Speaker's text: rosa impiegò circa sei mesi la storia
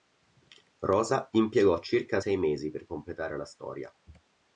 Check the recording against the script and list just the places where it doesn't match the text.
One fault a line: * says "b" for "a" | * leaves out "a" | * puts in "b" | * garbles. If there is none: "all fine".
* puts in "per completare"